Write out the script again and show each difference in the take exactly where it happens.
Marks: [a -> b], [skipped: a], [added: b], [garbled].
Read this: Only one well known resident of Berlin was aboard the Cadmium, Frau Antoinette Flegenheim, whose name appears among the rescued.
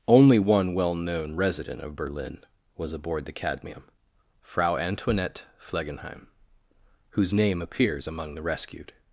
Only one well known resident of Berlin was aboard the Cadmium, Frau Antoinette Flegenheim, whose name appears among the rescued.